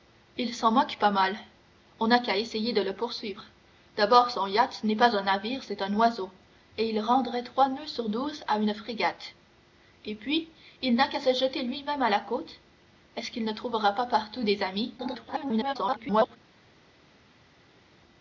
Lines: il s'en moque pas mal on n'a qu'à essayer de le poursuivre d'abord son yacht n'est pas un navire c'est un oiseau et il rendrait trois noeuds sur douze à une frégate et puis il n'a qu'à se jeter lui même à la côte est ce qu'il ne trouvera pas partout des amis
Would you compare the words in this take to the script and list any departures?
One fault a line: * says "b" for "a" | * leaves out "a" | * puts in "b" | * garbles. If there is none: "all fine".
* garbles